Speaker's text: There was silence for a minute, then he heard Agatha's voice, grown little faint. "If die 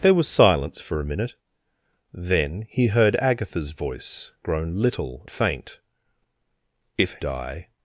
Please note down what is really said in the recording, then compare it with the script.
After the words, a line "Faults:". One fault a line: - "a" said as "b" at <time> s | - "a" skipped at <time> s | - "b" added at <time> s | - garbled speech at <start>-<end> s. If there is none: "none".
There was silence for a minute, then he heard Agatha's voice, grown little faint. "If die
Faults:
none